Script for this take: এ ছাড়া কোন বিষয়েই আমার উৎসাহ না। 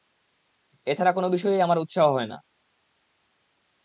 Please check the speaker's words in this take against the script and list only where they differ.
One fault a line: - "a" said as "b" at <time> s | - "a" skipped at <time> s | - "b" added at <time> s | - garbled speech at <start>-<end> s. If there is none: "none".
- "হয়" added at 2.1 s